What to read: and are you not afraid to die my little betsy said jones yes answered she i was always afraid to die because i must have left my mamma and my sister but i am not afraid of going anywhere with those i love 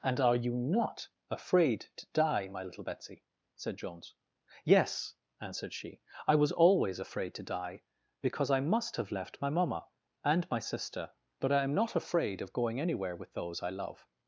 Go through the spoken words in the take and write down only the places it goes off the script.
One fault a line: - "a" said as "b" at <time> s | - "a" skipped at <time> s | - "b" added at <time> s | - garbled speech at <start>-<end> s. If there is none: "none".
none